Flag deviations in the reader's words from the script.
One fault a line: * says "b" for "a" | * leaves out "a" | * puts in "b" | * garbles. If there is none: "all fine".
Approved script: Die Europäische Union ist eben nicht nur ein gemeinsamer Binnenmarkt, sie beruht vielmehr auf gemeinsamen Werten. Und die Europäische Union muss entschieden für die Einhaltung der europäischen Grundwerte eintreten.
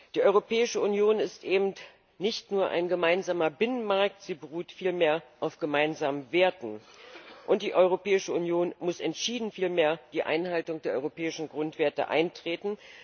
* says "vielmehr" for "für"